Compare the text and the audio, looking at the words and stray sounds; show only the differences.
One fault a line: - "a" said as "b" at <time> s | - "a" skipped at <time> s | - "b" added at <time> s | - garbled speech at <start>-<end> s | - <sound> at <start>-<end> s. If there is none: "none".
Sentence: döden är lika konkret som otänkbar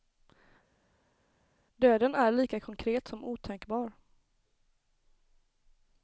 none